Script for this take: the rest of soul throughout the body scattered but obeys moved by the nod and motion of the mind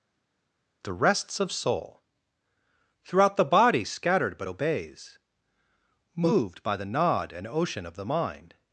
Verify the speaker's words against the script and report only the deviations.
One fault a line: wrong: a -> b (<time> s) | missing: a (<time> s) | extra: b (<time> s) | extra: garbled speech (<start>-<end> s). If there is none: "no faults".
wrong: rest -> rests (0.9 s)
wrong: motion -> ocean (7.5 s)